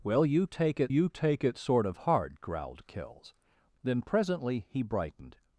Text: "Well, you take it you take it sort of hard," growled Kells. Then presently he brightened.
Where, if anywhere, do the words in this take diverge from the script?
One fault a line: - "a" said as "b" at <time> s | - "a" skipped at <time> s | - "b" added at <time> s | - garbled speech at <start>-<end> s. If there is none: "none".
none